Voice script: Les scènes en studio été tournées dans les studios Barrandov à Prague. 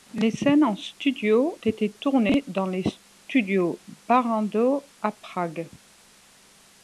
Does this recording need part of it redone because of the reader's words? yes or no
no